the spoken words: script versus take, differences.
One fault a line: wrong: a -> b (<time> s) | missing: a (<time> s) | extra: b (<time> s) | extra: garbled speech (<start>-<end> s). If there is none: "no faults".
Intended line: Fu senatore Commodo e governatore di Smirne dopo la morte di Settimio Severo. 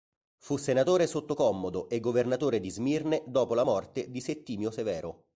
extra: sotto (1.1 s)